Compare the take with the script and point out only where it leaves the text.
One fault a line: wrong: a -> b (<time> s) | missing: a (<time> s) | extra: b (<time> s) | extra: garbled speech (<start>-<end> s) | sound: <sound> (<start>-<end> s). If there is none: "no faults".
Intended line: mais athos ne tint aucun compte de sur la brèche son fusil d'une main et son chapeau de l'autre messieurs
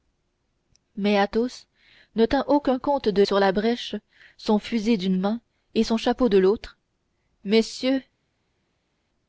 no faults